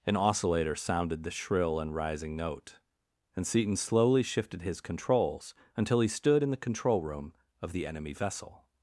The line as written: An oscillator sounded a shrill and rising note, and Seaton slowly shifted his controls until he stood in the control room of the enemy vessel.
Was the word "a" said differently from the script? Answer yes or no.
yes